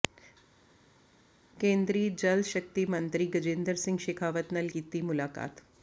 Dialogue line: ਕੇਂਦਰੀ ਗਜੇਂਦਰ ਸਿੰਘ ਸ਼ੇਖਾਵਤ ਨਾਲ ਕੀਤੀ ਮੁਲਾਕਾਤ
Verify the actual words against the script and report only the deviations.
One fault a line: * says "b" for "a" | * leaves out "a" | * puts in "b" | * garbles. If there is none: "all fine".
* puts in "ਜਲ ਸ਼ਕਤੀ ਮੰਤਰੀ"